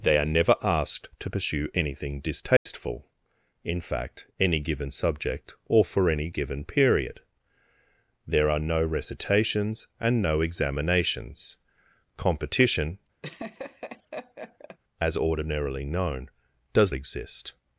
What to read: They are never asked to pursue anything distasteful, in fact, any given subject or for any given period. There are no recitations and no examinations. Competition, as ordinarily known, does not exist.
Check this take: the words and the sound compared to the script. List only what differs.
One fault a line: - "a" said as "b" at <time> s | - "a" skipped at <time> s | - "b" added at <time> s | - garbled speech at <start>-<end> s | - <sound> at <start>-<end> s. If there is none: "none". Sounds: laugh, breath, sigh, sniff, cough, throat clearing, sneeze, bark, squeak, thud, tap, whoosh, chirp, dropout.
- dropout at 2.6-2.7 s
- laugh at 13.2-14.8 s
- "not" skipped at 16.9 s